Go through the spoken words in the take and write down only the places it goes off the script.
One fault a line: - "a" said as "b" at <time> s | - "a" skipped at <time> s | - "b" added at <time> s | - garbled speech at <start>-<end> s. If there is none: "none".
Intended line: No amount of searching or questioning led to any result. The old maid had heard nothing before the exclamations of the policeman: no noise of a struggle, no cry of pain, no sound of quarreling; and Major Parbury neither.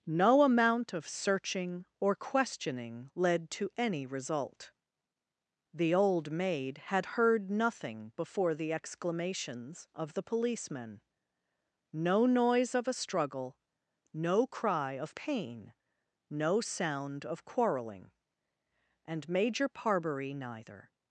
none